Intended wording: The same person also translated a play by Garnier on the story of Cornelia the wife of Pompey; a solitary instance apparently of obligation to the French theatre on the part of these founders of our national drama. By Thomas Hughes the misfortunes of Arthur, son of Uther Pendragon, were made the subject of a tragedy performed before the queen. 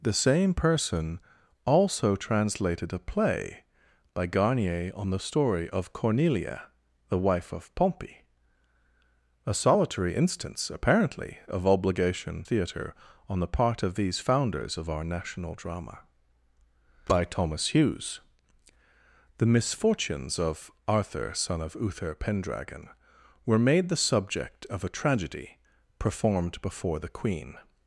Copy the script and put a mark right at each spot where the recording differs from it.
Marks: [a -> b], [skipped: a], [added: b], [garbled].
The same person also translated a play by Garnier on the story of Cornelia the wife of Pompey; a solitary instance apparently of obligation [skipped: to the French] theatre on the part of these founders of our national drama. By Thomas Hughes the misfortunes of Arthur, son of Uther Pendragon, were made the subject of a tragedy performed before the queen.